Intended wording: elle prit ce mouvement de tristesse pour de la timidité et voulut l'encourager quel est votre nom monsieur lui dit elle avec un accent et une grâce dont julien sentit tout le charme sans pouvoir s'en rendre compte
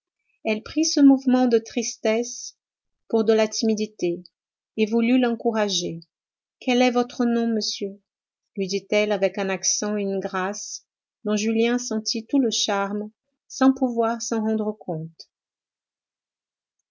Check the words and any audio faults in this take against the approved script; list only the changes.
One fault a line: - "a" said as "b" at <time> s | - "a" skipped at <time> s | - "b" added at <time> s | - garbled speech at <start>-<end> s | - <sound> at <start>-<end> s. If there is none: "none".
none